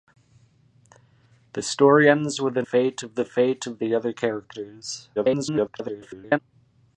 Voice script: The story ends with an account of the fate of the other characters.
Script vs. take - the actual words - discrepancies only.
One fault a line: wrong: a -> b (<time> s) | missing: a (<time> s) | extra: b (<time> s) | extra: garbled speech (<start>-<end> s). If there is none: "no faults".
wrong: account -> fate (2.6 s)
extra: garbled speech (5.2-6.4 s)